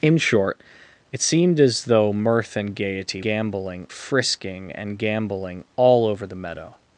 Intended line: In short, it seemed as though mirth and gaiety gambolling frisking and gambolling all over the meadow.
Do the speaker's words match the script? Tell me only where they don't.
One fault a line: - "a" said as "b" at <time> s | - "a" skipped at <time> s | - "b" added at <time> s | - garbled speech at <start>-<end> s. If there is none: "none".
none